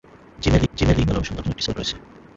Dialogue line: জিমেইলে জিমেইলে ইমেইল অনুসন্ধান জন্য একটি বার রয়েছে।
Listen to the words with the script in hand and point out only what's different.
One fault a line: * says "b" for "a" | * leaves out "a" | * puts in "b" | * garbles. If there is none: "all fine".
all fine